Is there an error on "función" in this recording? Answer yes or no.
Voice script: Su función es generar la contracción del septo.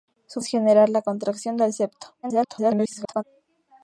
yes